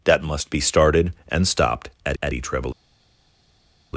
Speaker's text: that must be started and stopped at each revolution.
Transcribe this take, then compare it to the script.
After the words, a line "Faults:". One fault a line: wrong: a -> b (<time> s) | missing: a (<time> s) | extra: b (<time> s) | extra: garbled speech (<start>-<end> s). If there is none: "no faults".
that must be started and stopped at at each revolution.
Faults:
extra: at (2.2 s)